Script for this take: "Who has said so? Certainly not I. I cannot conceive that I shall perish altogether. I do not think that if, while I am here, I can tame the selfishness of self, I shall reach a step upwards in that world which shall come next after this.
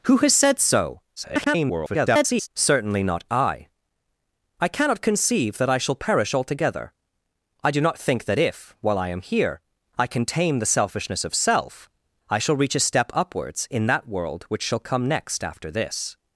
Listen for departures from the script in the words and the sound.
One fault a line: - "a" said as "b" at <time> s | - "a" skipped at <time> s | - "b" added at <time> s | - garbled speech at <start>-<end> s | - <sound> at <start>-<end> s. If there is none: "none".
- garbled speech at 1.2-2.5 s